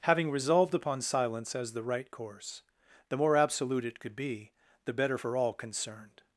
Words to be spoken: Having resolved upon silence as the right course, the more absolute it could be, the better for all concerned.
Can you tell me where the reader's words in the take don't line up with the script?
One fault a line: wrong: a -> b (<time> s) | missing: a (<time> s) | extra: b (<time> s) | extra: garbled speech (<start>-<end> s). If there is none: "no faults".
no faults